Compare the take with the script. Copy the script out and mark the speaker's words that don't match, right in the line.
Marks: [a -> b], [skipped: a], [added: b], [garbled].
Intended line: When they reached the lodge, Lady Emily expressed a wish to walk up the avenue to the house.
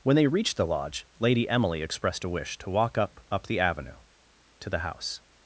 When they reached the lodge, Lady Emily expressed a wish to walk up [added: up] the avenue to the house.